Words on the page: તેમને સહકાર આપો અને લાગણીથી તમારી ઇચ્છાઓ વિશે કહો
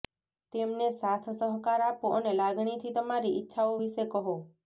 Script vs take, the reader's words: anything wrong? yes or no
yes